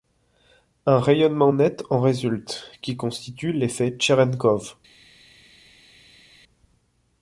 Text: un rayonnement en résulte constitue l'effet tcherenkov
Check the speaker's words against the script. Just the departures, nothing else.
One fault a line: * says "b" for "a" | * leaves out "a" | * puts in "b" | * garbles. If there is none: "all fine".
* puts in "net"
* puts in "qui"